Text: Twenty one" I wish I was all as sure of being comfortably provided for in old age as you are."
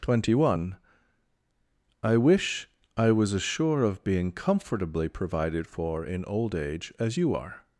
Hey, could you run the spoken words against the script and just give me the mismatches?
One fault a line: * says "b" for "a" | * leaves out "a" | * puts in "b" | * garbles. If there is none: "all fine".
* leaves out "all"